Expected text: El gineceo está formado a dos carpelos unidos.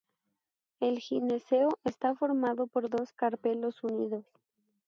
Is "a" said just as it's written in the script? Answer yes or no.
no